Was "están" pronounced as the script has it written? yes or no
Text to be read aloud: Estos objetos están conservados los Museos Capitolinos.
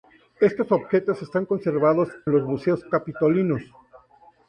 yes